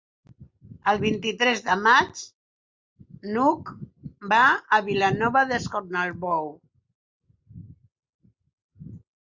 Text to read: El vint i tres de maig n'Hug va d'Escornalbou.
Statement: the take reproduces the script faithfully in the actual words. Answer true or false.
false